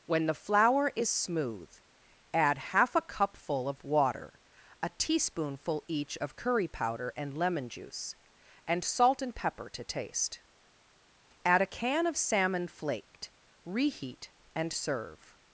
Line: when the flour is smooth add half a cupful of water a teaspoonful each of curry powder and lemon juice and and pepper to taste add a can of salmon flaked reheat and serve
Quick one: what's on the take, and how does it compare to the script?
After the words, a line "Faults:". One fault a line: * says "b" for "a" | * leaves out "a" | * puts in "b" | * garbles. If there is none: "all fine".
when the flour is smooth add half a cupful of water a teaspoonful each of curry powder and lemon juice and salt and pepper to taste add a can of salmon flaked reheat and serve
Faults:
* puts in "salt"